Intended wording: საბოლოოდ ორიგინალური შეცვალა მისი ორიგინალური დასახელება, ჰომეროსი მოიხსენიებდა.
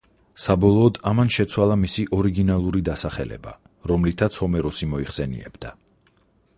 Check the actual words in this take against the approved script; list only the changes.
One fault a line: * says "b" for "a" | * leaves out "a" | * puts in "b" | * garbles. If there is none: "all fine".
* says "ამან" for "ორიგინალური"
* puts in "რომლითაც"